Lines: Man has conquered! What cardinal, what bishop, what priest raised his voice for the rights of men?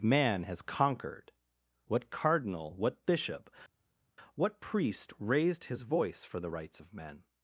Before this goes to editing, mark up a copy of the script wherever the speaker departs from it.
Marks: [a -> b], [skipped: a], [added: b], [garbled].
Man has conquered! What cardinal, what bishop, what priest raised his voice for the rights of men?